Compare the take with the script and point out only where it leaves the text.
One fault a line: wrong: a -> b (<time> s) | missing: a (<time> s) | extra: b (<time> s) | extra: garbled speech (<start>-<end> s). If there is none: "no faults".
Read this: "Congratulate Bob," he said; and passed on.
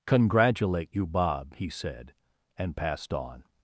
extra: you (0.9 s)